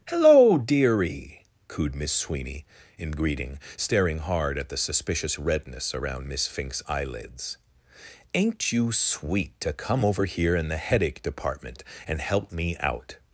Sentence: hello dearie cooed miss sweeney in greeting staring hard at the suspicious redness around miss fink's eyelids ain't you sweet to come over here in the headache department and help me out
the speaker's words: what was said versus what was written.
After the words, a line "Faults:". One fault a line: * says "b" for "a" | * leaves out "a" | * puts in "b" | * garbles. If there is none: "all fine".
hello dearie cooed miss sweeney in greeting staring hard at the suspicious redness around miss fink's eyelids ain't you sweet to come over here in the headache department and help me out
Faults:
all fine